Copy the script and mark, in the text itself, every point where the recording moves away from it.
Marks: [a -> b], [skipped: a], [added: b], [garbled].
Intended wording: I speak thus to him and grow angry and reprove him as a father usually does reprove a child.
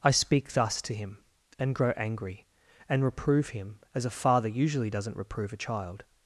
I speak thus to him and grow angry and reprove him as a father usually [does -> doesn't] reprove a child.